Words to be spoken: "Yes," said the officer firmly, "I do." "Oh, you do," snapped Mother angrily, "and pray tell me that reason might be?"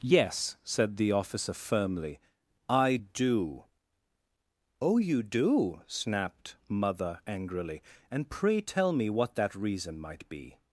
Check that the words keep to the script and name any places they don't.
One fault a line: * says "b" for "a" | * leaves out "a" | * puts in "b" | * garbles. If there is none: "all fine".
* puts in "what"